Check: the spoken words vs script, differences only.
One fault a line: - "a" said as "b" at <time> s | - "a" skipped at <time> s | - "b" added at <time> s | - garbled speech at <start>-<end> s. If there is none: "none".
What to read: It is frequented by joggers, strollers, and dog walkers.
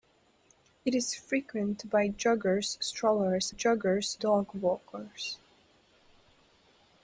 - "and" said as "joggers" at 3.5 s